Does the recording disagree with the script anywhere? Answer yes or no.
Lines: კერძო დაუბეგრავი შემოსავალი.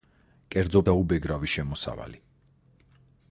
no